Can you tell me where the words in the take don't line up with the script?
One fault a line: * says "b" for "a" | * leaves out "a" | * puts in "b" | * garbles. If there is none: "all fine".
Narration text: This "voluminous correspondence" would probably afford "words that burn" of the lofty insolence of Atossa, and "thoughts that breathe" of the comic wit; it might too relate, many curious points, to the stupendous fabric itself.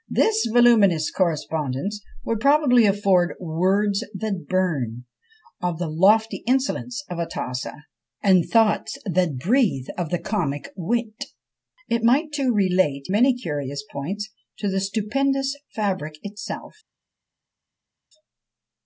all fine